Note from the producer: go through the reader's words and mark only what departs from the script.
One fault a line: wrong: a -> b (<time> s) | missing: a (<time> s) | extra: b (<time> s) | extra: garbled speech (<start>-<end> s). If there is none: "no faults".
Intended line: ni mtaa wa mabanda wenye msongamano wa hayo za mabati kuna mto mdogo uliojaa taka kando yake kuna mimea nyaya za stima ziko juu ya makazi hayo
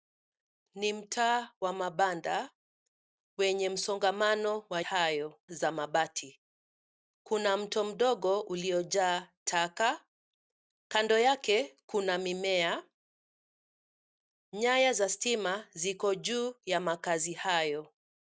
no faults